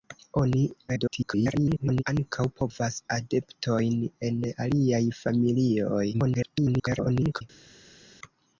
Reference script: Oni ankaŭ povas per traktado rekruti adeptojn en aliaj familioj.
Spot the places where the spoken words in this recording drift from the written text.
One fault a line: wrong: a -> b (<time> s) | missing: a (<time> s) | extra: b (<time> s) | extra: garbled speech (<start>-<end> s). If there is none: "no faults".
extra: garbled speech (0.9-2.0 s)
missing: per traktado rekruti (3.0 s)
extra: garbled speech (6.1-7.4 s)